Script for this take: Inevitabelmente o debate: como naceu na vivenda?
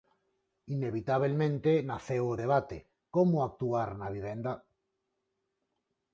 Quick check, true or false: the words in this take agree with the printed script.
false